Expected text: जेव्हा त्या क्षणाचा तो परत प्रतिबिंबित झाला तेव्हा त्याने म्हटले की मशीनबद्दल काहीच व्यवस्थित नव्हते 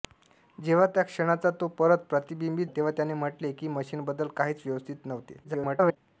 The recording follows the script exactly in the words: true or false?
false